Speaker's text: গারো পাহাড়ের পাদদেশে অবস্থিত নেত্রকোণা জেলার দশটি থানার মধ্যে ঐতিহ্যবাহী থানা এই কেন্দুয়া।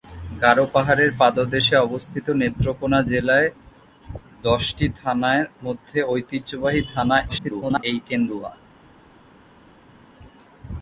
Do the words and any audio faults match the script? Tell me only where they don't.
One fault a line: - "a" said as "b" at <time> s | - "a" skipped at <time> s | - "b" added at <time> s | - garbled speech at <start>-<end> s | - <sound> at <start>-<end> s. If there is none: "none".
- garbled speech at 7.3-7.8 s